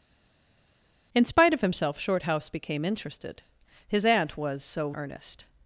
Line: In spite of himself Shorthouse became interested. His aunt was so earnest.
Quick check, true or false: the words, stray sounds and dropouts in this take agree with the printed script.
true